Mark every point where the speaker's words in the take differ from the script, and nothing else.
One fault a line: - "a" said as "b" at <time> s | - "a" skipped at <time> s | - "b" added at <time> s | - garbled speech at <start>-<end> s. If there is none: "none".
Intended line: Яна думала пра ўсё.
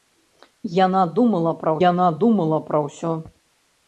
- "яна думала пра" added at 1.9 s